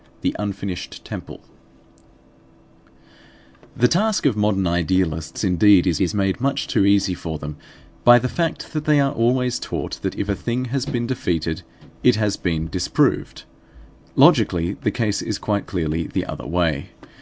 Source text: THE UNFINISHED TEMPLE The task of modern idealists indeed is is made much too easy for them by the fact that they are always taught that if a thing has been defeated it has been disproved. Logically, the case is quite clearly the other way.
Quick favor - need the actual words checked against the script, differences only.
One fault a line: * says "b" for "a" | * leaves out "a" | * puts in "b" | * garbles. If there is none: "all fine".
all fine